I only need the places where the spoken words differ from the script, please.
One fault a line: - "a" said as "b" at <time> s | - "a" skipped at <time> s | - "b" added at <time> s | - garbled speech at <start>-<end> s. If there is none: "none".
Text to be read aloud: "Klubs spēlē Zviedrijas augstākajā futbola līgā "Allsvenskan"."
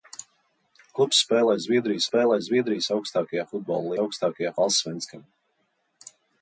- "spēlē Zviedrijas" added at 2.1 s
- "līgā" said as "augstākajā" at 4.0 s